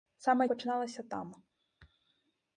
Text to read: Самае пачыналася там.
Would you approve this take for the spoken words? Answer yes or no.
yes